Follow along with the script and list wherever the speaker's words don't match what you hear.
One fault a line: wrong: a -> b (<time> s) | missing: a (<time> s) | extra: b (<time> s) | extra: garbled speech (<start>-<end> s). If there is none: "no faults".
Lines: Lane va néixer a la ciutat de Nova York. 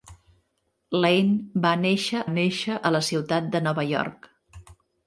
extra: néixer (2.3 s)